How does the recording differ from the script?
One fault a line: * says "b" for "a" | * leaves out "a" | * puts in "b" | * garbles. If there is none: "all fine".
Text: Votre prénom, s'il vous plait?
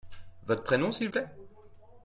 * leaves out "vous"